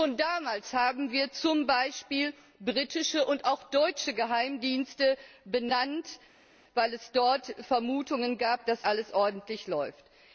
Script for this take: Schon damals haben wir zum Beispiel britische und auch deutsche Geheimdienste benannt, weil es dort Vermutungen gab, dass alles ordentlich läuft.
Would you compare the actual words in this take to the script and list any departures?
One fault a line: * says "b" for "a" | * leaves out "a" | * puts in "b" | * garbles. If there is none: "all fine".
all fine